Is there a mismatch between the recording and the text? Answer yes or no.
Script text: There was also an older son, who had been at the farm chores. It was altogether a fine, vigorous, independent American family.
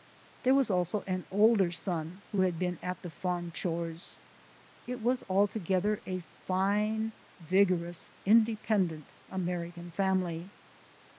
no